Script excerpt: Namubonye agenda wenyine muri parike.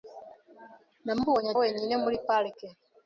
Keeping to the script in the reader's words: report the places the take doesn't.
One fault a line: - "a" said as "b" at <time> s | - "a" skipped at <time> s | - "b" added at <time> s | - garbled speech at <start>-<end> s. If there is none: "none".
- "agenda" skipped at 1.5 s